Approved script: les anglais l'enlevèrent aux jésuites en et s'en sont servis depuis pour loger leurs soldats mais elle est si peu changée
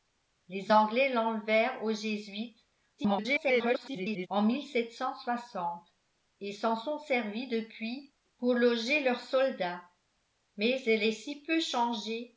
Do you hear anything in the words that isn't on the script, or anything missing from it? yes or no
yes